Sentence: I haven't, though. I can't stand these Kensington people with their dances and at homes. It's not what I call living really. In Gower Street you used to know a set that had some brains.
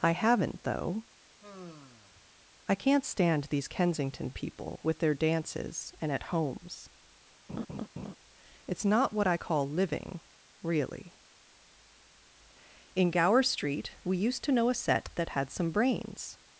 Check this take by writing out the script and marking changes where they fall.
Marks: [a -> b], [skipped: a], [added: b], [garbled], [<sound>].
I haven't, though. [sigh] I can't stand these Kensington people with their dances and at homes. [laugh] It's not what I call living really. In Gower Street [you -> we] used to know a set that had some brains.